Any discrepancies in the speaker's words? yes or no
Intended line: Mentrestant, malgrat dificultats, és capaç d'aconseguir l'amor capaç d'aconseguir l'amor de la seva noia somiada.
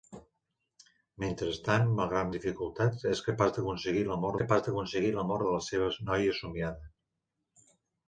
no